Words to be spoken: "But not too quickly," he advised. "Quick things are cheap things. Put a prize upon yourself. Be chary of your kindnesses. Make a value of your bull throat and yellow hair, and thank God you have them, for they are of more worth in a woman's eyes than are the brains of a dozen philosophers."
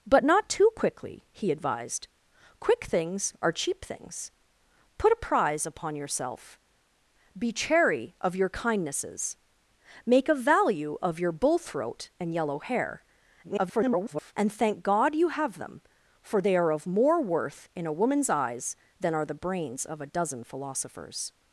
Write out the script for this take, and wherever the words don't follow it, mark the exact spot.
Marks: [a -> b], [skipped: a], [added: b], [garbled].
"But not too quickly," he advised. "Quick things are cheap things. Put a prize upon yourself. Be chary of your kindnesses. Make a value of your bull throat and yellow hair, [garbled] and thank God you have them, for they are of more worth in a woman's eyes than are the brains of a dozen philosophers."